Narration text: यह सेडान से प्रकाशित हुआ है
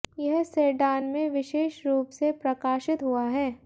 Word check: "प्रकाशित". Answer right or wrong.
right